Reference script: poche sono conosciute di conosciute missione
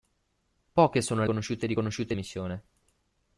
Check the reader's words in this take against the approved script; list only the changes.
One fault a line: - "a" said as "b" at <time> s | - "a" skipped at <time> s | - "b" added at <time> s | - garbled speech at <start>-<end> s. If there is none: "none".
none